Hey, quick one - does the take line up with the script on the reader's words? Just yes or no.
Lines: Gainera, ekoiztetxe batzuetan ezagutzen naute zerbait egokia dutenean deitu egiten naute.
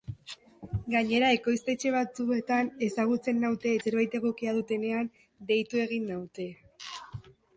yes